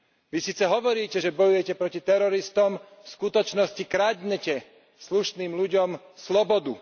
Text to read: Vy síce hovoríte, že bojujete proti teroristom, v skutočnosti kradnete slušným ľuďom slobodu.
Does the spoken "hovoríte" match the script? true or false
true